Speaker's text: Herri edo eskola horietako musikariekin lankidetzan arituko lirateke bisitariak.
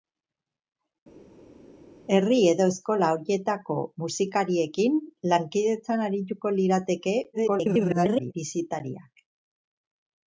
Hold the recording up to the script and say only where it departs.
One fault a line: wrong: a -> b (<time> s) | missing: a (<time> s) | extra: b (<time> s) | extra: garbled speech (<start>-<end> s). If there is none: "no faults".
extra: garbled speech (7.3-8.3 s)